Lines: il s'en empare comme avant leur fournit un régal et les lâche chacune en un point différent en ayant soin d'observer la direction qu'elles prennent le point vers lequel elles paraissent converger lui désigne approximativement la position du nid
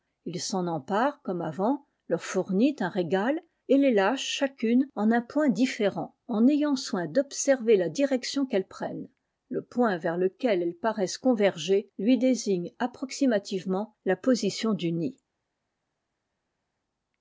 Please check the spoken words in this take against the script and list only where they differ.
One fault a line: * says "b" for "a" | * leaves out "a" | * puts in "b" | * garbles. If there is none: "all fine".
all fine